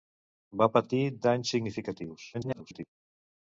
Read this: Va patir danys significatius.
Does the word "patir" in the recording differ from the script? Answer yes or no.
no